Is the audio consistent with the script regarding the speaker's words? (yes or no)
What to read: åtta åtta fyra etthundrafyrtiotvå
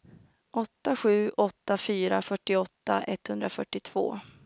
no